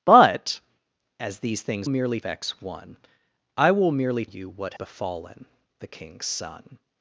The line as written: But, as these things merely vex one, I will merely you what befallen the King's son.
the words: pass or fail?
pass